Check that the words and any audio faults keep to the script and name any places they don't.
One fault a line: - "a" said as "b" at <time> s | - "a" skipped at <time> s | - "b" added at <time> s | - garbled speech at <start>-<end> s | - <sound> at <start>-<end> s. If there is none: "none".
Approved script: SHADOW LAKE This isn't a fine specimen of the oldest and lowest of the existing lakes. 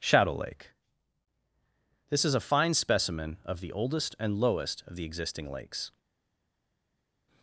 - "isn't" said as "is" at 2.2 s